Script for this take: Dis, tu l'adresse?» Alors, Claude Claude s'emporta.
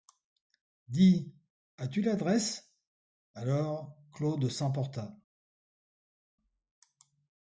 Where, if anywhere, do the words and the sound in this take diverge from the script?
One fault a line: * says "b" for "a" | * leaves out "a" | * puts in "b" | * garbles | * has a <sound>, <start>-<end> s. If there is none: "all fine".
* puts in "as"
* leaves out "Claude"